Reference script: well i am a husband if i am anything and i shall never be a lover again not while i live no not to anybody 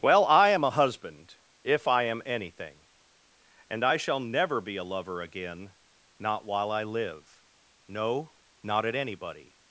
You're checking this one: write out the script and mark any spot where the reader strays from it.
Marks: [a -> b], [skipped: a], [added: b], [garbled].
well i am a husband if i am anything and i shall never be a lover again not while i live no not [to -> at] anybody